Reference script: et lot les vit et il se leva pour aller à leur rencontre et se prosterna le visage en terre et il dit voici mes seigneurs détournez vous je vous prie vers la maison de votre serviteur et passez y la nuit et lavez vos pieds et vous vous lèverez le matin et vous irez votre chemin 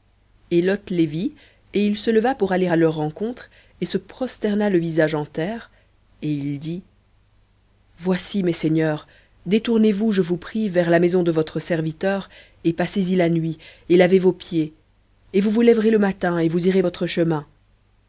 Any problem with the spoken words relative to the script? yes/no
no